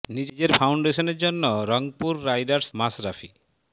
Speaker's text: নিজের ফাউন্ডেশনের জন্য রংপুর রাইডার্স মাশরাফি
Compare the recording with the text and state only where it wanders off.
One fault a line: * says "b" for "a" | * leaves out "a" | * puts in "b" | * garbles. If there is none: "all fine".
all fine